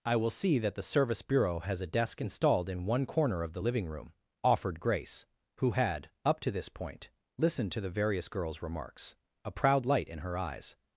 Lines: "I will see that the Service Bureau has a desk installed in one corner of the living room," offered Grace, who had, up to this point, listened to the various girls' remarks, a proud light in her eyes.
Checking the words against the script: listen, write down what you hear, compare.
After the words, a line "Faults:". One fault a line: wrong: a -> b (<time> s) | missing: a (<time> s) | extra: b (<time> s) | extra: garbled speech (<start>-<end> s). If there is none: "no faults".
"I will see that the Service Bureau has a desk installed in one corner of the living room," offered Grace, who had, up to this point, listened to the various girls' remarks, a proud light in her eyes.
Faults:
no faults